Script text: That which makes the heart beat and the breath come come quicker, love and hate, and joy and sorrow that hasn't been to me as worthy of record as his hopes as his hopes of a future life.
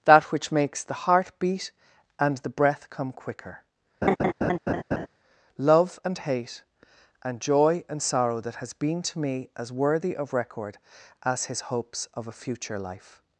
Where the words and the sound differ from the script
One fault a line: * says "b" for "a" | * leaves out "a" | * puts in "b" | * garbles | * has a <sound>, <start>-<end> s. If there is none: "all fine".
* leaves out "come"
* has a laugh, 4.0-5.1 s
* says "has" for "hasn't"
* leaves out "as his hopes"